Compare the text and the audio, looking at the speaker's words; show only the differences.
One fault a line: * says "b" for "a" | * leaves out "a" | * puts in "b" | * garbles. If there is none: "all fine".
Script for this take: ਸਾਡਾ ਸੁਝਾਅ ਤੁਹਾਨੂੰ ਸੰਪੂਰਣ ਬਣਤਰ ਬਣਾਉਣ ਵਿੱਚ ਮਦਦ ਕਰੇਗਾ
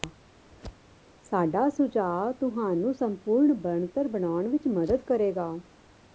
all fine